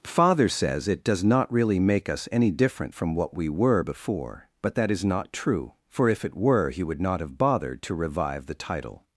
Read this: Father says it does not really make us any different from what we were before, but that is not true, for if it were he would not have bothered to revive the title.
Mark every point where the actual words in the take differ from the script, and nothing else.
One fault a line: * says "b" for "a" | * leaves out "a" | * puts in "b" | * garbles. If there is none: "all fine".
all fine